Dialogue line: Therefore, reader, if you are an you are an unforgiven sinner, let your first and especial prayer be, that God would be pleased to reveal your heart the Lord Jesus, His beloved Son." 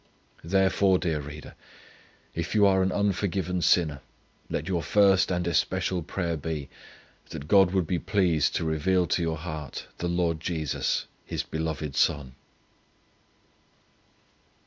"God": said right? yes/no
yes